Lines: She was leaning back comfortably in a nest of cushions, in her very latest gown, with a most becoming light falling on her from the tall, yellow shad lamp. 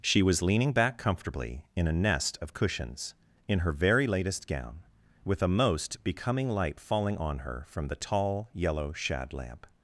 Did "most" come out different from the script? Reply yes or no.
no